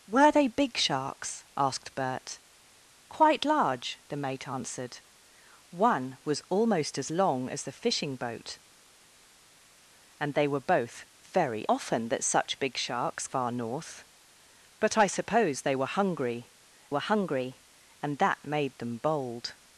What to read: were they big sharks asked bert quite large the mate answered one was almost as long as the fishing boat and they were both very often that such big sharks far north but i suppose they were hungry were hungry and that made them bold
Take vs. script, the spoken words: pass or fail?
pass